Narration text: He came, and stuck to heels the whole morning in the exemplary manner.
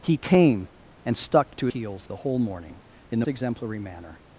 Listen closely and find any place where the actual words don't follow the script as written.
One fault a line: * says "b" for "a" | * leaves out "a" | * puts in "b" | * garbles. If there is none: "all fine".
all fine